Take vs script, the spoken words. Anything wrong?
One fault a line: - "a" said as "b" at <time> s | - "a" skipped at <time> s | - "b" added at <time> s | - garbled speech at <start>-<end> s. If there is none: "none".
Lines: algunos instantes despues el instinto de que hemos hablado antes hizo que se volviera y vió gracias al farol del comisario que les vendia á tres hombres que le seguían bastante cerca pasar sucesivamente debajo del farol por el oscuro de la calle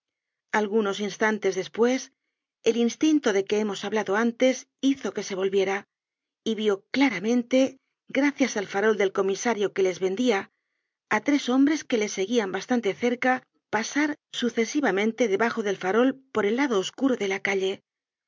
- "claramente" added at 6.9 s
- "lado" added at 16.6 s